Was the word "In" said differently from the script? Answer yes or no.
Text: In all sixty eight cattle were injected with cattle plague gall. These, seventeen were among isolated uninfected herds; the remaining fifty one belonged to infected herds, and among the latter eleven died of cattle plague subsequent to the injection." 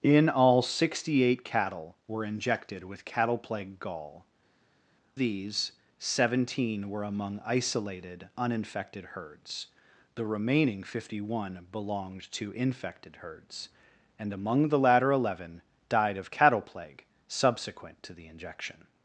no